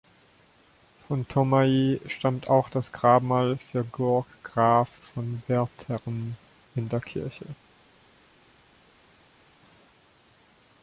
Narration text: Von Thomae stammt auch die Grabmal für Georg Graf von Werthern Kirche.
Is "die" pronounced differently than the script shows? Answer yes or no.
yes